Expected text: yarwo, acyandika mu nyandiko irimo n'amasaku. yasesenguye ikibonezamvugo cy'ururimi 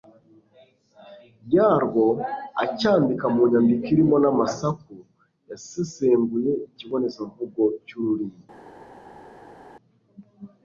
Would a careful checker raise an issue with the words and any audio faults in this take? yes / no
no